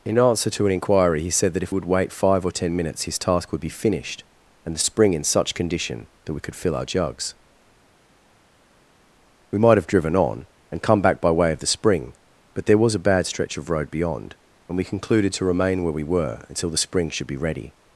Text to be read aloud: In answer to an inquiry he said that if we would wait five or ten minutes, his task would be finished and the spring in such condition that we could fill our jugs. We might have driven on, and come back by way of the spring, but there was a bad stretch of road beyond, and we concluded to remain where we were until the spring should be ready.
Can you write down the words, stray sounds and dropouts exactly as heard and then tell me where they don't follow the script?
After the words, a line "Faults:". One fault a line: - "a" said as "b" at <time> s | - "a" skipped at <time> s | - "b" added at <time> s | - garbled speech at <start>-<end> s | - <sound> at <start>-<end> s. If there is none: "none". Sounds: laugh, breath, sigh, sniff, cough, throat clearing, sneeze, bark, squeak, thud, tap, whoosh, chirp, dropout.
In answer to an inquiry he said that if would wait five or ten minutes, his task would be finished and the spring in such condition that we could fill our jugs. We might have driven on, and come back by way of the spring, but there was a bad stretch of road beyond, and we concluded to remain where we were until the spring should be ready.
Faults:
- "we" skipped at 1.8 s